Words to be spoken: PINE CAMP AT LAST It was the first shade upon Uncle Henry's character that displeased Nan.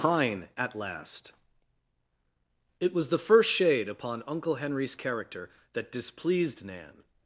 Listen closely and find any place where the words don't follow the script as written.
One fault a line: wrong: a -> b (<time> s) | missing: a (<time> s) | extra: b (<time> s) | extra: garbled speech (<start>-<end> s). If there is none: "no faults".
missing: CAMP (0.5 s)